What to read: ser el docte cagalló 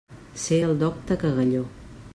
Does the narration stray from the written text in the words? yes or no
no